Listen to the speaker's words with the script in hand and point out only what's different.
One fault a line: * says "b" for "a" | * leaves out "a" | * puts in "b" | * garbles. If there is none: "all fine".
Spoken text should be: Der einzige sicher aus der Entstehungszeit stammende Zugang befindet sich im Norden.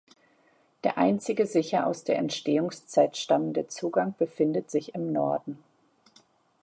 all fine